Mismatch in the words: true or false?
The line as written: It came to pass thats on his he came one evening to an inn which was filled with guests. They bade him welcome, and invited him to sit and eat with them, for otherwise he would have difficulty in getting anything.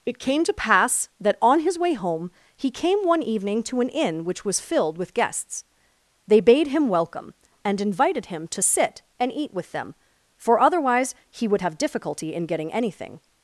true